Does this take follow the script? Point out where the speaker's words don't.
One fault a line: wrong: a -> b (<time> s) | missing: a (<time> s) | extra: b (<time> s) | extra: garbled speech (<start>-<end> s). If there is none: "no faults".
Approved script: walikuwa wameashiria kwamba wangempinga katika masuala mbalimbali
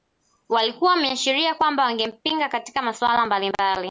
no faults